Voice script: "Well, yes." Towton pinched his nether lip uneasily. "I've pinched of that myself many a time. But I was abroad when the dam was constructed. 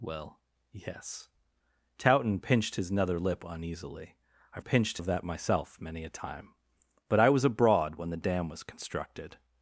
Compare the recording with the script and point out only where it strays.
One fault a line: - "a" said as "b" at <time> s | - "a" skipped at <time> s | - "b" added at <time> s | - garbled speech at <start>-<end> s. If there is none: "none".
none